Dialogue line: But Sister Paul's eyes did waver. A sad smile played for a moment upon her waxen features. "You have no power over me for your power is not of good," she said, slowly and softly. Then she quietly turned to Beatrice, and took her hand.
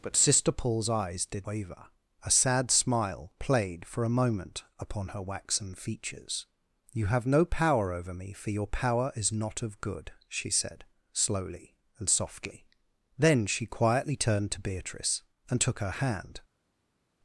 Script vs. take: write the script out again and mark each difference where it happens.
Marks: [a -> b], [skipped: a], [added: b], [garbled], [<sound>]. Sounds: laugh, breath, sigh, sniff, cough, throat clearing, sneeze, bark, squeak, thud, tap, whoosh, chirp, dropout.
But Sister Paul's eyes did waver. A sad smile played for a moment upon her waxen features. "You have no power over me for your power is not of good," she said, slowly and softly. Then she quietly turned to Beatrice, and took her hand.